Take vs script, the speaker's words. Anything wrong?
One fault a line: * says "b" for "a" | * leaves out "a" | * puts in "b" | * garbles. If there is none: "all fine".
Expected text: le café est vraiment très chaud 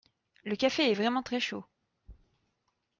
all fine